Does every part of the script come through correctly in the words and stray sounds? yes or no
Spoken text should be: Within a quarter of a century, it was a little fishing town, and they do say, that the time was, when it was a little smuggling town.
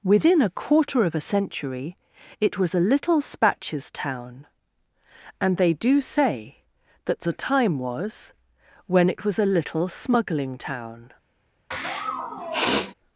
no